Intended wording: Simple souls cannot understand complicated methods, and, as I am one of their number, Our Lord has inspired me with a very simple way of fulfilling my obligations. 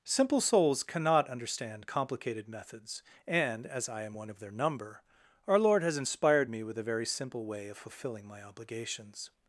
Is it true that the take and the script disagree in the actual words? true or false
false